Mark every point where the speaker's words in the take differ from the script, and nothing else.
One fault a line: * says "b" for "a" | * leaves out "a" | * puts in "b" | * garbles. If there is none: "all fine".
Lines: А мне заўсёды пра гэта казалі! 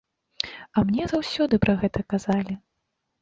all fine